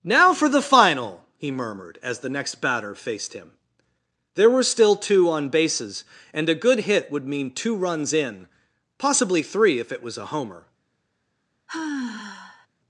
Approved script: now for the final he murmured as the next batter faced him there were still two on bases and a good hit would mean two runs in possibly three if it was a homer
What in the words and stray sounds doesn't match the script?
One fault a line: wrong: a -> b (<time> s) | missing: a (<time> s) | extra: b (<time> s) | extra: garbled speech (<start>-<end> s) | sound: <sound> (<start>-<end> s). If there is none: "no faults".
sound: sigh (11.7-12.7 s)